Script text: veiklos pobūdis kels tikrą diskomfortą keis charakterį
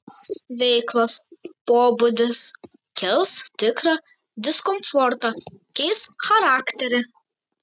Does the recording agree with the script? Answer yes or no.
yes